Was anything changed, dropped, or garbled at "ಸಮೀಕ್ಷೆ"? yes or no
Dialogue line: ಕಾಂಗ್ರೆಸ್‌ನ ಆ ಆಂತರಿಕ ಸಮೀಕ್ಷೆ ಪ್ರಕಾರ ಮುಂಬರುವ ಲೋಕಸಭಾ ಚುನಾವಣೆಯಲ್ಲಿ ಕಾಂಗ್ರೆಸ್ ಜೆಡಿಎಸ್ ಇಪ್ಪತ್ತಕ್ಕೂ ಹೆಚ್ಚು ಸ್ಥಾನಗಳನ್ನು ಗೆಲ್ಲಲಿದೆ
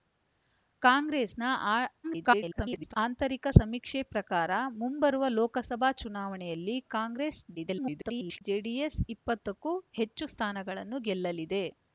no